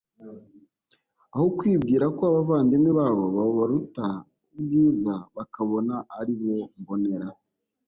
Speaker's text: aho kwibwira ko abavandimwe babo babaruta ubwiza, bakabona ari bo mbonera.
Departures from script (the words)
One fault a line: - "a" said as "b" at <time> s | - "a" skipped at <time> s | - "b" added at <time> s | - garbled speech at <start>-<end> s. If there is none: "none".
none